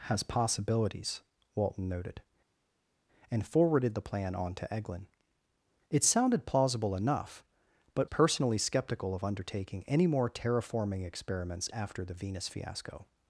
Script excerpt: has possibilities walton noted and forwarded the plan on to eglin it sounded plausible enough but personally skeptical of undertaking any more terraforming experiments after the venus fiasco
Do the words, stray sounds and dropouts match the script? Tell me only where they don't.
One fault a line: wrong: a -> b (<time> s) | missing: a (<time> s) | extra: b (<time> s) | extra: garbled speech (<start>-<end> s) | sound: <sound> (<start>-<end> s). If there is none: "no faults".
no faults